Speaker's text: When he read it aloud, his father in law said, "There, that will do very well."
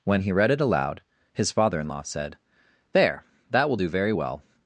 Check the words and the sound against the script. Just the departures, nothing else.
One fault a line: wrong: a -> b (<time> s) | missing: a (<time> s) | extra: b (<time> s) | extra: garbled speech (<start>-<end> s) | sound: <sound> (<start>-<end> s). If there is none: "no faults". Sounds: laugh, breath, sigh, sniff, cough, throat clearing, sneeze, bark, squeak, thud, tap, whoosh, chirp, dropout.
no faults